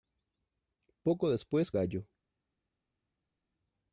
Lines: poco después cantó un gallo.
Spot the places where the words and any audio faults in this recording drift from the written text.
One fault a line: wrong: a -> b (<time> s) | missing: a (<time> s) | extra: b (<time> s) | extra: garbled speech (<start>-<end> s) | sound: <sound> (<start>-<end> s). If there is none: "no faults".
missing: cantó un (1.7 s)